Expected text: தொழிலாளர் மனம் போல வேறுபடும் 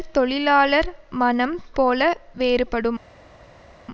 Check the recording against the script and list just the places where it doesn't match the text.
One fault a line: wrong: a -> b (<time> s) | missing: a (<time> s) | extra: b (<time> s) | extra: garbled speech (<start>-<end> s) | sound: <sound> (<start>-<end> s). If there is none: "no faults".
no faults